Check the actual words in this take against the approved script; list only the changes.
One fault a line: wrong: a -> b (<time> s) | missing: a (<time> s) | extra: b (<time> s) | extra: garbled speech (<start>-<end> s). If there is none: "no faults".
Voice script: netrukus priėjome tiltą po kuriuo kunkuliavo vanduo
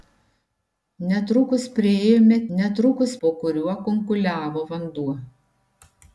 wrong: tiltą -> netrukus (2.6 s)